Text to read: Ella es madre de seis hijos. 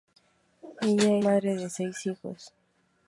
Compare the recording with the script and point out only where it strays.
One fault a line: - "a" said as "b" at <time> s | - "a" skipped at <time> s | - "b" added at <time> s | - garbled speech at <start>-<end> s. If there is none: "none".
- "es" skipped at 1.2 s